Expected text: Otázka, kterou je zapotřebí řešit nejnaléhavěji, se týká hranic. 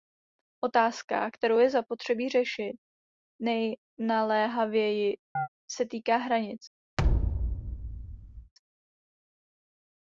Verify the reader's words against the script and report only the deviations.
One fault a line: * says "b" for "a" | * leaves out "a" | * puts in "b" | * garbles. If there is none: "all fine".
all fine